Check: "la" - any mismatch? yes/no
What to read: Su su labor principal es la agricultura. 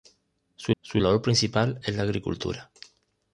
no